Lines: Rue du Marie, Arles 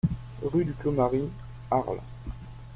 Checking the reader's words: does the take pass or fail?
fail